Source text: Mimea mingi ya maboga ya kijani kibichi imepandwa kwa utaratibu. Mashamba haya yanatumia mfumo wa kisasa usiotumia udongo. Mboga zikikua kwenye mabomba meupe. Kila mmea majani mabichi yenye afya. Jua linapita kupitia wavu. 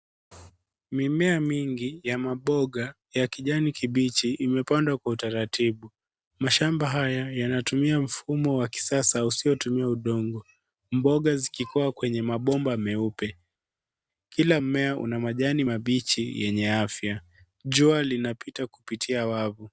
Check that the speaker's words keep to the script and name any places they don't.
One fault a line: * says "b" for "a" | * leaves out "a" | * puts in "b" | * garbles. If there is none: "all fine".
* puts in "una"